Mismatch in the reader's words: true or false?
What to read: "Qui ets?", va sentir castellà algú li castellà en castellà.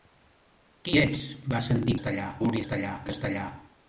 false